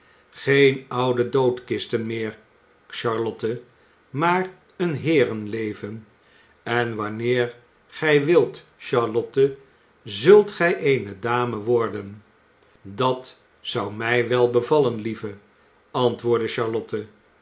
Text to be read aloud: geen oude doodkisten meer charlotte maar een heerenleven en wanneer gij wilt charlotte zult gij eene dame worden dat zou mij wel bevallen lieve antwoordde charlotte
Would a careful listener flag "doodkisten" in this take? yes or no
no